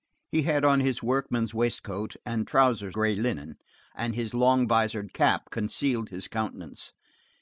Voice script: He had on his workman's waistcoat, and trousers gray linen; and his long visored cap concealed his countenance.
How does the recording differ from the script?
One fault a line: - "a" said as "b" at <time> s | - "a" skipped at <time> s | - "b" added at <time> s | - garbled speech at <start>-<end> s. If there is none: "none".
none